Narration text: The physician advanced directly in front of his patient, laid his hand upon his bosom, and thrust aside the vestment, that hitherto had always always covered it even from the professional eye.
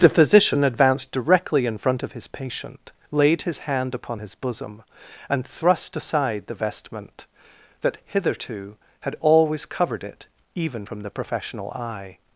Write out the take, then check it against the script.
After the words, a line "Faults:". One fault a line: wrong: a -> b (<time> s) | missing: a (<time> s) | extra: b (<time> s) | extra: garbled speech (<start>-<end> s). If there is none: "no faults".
The physician advanced directly in front of his patient, laid his hand upon his bosom, and thrust aside the vestment, that hitherto had always covered it even from the professional eye.
Faults:
missing: always (9.6 s)